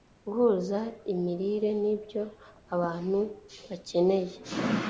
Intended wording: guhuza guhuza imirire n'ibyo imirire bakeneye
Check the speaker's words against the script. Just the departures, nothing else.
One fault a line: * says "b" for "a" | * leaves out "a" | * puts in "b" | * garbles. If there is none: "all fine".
* leaves out "guhuza"
* says "abantu" for "imirire"